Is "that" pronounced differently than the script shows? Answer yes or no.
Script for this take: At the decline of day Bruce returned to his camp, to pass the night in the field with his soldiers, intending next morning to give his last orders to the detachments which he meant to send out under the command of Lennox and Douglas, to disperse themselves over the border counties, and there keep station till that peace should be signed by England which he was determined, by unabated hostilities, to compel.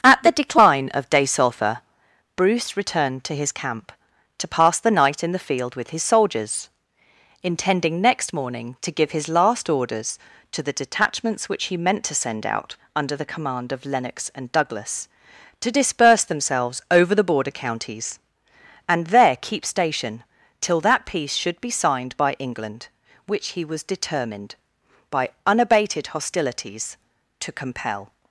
no